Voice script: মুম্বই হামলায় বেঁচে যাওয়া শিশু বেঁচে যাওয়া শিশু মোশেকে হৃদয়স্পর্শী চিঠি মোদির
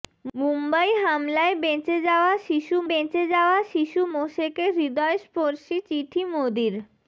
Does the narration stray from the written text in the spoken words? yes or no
no